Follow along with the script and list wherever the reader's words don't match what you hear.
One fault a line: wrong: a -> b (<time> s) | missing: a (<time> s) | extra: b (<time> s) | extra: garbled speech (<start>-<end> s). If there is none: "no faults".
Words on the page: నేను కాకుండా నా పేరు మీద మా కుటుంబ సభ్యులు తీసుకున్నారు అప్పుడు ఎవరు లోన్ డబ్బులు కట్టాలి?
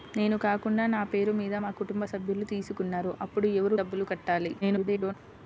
missing: లోన్ (3.8 s)
extra: garbled speech (4.6-5.1 s)